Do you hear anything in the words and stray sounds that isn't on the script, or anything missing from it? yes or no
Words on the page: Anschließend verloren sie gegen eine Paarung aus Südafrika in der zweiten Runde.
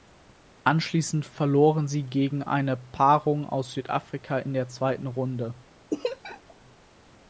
yes